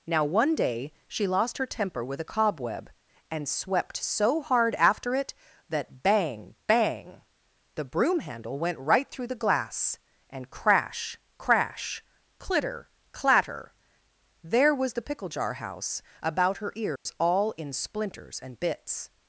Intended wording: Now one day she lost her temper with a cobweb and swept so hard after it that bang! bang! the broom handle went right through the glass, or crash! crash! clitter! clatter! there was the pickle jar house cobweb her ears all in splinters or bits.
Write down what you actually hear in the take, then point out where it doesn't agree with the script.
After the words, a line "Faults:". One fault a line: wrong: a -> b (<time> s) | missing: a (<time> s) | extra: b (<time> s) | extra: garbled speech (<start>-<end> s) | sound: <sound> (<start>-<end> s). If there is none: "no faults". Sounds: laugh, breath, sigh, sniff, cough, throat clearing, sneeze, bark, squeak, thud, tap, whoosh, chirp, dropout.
Now one day she lost her temper with a cobweb and swept so hard after it that bang! bang! the broom handle went right through the glass, and crash! crash! clitter! clatter! there was the pickle jar house about her ears all in splinters and bits.
Faults:
wrong: or -> and (10.3 s)
wrong: cobweb -> about (16.2 s)
sound: dropout (17.0-17.1 s)
wrong: or -> and (18.4 s)